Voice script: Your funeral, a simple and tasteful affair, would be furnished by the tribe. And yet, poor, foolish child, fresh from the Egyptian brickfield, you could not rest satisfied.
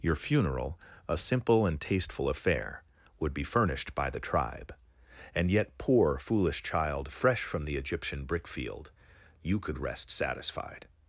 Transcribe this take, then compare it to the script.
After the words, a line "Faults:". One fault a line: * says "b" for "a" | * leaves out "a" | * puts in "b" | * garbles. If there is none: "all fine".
Your funeral, a simple and tasteful affair, would be furnished by the tribe. And yet, poor, foolish child, fresh from the Egyptian brickfield, you could rest satisfied.
Faults:
* leaves out "not"